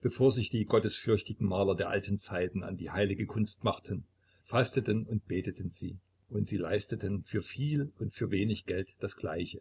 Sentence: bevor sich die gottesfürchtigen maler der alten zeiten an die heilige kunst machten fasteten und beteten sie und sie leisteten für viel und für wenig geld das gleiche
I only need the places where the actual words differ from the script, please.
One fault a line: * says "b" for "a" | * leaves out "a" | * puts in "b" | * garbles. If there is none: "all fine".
all fine